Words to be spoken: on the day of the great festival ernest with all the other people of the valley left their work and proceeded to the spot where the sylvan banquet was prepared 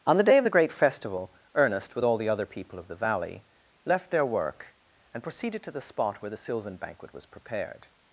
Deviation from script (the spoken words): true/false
false